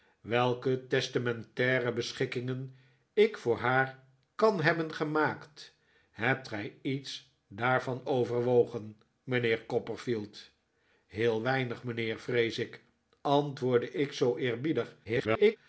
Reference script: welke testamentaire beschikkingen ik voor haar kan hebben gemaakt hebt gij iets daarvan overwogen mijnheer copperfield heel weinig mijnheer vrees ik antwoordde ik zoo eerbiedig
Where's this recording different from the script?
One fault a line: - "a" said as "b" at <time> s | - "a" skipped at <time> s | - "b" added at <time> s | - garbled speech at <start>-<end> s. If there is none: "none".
- garbled speech at 15.0-15.6 s